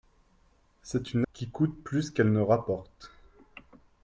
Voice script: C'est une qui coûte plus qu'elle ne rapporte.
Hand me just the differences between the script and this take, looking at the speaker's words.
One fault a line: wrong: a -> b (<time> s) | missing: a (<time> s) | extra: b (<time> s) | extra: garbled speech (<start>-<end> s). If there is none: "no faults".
no faults